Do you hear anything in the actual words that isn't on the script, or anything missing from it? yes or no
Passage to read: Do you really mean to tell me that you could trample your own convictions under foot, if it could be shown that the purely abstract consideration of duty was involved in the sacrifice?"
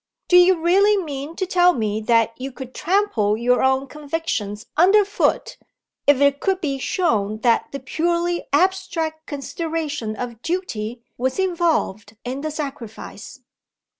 no